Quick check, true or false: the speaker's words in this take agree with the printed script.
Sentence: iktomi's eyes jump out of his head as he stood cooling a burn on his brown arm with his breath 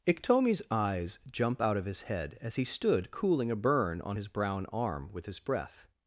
true